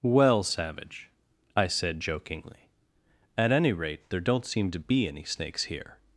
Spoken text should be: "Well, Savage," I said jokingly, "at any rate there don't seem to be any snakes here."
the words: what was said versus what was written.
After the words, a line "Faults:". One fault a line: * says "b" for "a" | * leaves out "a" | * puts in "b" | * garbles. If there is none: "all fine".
"Well, Savage," I said jokingly, "at any rate there don't seem to be any snakes here."
Faults:
all fine